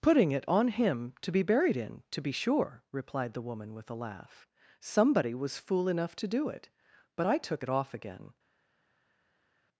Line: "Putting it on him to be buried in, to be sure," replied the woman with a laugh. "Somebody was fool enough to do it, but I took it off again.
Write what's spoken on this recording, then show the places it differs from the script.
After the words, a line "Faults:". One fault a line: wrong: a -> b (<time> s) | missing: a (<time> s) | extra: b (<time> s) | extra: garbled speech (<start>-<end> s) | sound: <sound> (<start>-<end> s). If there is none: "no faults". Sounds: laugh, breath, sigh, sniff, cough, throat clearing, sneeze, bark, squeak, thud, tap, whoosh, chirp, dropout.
"Putting it on him to be buried in, to be sure," replied the woman with a laugh. "Somebody was fool enough to do it, but I took it off again.
Faults:
no faults